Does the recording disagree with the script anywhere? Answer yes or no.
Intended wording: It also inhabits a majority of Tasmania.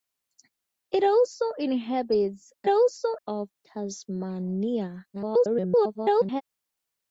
yes